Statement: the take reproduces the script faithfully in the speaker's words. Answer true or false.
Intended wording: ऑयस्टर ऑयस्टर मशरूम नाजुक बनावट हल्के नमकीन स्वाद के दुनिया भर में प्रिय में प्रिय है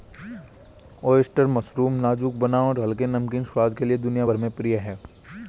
false